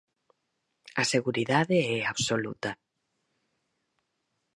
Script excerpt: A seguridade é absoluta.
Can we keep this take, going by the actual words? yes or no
yes